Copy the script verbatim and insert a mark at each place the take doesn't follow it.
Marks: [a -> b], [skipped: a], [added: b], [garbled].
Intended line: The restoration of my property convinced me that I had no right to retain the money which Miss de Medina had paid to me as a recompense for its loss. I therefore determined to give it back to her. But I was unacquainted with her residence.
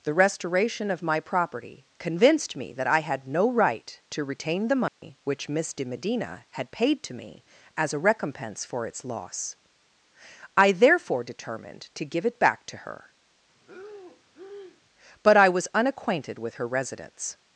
The restoration of my property convinced me that I had no right to retain the money which Miss de Medina had paid to me as a recompense for its loss. I therefore determined to give it back to her. But I was unacquainted with her residence.